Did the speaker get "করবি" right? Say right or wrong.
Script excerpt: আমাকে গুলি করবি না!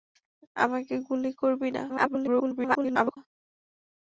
right